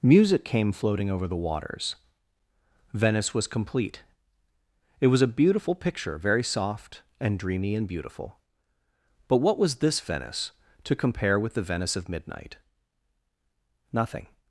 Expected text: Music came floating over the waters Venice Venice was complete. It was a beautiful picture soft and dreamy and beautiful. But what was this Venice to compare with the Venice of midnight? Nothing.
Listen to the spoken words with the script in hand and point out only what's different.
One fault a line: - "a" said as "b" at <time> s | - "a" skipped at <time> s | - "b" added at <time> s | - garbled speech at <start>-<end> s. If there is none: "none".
- "Venice" skipped at 3.4 s
- "very" added at 6.2 s